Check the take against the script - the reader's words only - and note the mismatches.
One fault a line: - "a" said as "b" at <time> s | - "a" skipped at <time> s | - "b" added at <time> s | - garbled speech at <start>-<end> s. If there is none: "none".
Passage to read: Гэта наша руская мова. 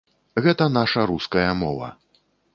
none